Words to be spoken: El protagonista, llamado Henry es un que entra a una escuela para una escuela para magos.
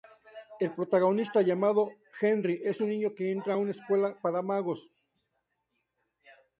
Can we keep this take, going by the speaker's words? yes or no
no